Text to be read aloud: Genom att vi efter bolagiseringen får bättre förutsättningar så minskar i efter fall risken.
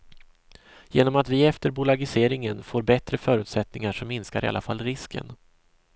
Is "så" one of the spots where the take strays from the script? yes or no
no